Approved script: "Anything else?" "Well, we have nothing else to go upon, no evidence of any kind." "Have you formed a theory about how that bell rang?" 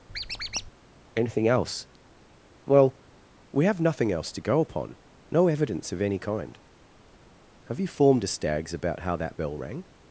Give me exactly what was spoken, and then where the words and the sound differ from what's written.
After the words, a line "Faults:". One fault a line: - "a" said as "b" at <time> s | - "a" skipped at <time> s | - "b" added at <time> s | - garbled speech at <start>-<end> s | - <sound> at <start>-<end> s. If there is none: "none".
"Anything else?" "Well, we have nothing else to go upon, no evidence of any kind." "Have you formed a stags about how that bell rang?"
Faults:
- squeak at 0.1-0.7 s
- "theory" said as "stags" at 8.3 s